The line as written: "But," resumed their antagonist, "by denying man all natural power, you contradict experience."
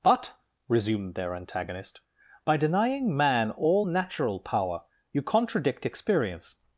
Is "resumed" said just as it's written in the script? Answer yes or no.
yes